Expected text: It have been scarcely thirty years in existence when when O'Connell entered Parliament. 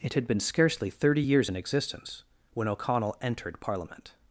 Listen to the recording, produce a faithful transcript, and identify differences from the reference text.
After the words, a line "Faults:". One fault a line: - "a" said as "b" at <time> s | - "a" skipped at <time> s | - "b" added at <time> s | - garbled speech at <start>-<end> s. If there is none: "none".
It had been scarcely thirty years in existence when O'Connell entered Parliament.
Faults:
- "have" said as "had" at 0.1 s
- "when" skipped at 2.7 s